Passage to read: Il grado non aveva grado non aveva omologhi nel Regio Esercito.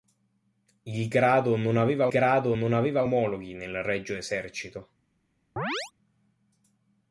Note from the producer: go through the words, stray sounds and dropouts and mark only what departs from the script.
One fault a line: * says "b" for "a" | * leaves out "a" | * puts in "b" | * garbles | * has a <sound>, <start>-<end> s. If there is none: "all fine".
* has a chirp, 5.6-5.9 s